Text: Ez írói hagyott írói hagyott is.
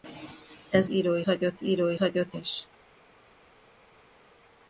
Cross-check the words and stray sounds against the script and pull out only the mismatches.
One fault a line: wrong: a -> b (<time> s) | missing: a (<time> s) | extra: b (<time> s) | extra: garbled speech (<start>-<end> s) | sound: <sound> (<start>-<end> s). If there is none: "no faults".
no faults